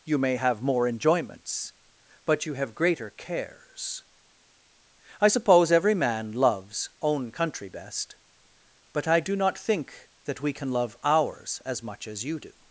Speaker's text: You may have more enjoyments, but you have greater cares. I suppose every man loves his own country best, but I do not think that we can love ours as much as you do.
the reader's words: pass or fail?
fail